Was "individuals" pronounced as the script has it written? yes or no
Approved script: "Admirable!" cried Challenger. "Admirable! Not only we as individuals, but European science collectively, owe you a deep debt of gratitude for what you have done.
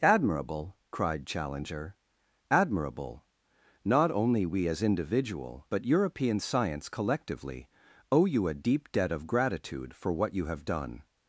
no